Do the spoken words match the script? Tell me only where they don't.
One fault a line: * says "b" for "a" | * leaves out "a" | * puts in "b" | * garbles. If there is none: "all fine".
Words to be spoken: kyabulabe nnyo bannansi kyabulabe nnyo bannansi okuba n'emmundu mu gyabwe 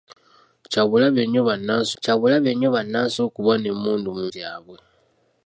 all fine